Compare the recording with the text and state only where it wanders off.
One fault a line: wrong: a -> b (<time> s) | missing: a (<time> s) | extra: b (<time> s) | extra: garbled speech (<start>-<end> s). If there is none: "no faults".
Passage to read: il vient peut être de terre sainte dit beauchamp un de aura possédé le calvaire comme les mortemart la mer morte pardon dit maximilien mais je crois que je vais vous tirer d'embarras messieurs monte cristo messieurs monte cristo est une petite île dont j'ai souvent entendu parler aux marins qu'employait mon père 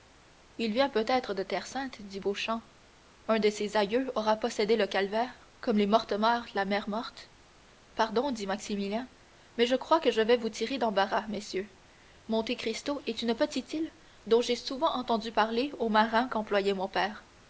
extra: ses aïeux (3.5 s)
missing: messieurs monte cristo (13.0 s)